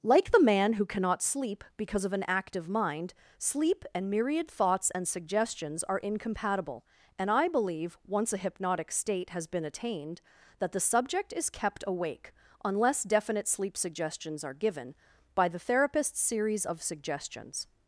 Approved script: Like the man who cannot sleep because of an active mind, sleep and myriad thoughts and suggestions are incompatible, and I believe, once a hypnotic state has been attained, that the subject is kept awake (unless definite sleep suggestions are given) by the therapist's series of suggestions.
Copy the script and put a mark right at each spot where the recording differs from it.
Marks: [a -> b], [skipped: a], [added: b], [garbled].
Like the man who cannot sleep because of an active mind, sleep and myriad thoughts and suggestions are incompatible, and I believe, once a hypnotic state has been attained, that the subject is kept awake (unless definite sleep suggestions are given) by the therapist's series of suggestions.